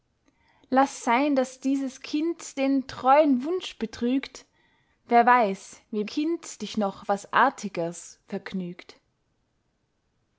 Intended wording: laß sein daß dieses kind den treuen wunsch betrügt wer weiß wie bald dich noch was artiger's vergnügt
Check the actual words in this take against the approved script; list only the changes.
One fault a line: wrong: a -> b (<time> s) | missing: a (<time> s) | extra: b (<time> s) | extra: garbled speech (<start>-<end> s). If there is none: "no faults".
wrong: bald -> kind (6.0 s)